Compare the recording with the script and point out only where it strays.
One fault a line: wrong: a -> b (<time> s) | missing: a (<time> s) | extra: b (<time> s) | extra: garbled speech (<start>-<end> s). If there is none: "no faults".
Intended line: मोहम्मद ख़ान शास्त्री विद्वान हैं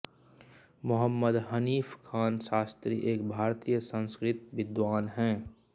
extra: हनीफ़ (1.5 s)
extra: एक भारतीय संस्कृत (3.1 s)